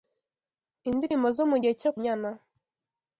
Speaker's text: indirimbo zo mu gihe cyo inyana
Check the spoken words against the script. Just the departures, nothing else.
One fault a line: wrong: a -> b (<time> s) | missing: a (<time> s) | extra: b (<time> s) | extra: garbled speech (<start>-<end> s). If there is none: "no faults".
no faults